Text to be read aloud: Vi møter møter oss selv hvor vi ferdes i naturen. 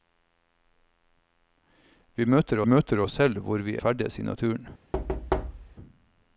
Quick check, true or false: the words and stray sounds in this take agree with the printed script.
false